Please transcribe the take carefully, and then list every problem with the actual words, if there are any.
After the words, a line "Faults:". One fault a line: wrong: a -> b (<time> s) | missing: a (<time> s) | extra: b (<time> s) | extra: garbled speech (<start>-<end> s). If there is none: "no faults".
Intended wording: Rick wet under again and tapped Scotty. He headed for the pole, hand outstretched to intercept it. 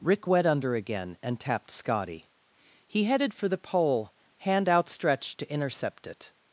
Rick wet under again and tapped Scotty. He headed for the pole, hand outstretched to intercept it.
Faults:
no faults